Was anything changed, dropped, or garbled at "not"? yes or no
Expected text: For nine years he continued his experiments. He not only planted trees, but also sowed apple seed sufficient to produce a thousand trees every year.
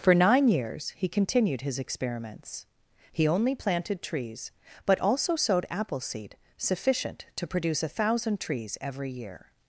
yes